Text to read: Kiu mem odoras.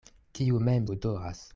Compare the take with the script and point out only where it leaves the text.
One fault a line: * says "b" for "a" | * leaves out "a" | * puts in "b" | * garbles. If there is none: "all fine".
all fine